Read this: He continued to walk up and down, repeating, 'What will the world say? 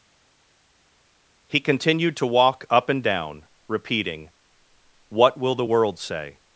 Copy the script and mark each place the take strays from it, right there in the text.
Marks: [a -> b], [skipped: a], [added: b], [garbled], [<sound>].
He continued to walk up and down, repeating, 'What will the world say?